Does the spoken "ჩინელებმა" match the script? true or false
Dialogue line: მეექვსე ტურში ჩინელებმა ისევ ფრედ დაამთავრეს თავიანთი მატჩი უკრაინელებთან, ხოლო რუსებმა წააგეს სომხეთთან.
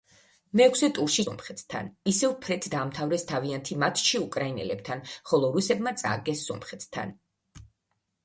false